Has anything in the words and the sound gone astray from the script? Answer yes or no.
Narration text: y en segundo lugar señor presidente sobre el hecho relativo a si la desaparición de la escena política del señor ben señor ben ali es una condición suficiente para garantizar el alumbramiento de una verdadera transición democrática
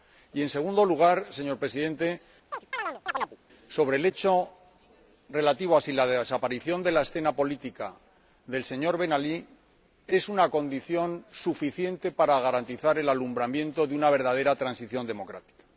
yes